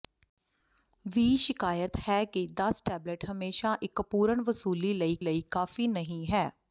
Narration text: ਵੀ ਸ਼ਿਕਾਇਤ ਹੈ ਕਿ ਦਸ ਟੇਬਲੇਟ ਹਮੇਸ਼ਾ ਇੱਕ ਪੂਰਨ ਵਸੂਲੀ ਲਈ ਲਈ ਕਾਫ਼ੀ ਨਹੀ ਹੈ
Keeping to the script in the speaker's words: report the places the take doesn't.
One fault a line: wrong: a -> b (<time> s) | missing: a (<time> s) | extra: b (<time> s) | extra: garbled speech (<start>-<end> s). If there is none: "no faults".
no faults